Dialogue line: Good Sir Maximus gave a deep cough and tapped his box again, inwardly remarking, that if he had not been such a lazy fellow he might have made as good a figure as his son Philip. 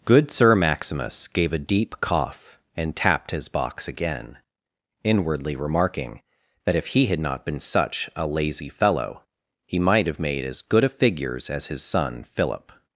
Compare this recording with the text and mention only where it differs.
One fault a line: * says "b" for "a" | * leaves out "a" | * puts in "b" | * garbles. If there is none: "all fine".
* says "figures" for "figure"